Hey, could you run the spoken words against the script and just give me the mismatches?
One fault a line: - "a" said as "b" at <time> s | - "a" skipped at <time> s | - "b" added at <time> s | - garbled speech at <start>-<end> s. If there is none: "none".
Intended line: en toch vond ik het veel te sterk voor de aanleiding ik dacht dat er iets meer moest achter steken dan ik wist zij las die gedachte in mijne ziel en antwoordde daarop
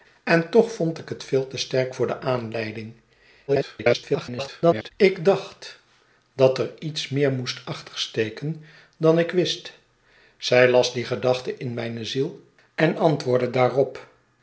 - garbled speech at 3.5-4.9 s